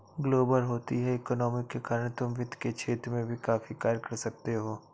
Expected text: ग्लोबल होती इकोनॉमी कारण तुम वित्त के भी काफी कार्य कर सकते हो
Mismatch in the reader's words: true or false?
true